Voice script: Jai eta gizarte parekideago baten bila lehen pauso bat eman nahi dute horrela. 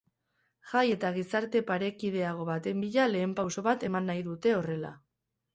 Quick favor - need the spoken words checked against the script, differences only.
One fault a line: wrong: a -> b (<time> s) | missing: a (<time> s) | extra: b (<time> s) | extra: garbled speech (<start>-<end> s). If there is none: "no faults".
no faults